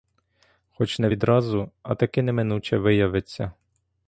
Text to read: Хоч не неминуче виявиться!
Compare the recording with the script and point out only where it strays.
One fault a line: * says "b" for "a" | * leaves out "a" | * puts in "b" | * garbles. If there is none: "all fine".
* puts in "відразу а таки"